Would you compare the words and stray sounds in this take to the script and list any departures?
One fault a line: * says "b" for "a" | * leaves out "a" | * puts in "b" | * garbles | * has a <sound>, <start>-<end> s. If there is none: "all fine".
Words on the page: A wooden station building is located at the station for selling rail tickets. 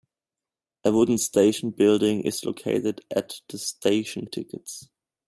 * leaves out "for selling rail"